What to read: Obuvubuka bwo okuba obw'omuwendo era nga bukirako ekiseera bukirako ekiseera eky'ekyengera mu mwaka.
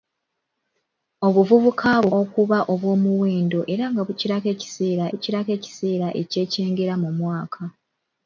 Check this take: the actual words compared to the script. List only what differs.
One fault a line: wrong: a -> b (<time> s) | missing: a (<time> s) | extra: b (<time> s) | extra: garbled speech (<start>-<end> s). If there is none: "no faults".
no faults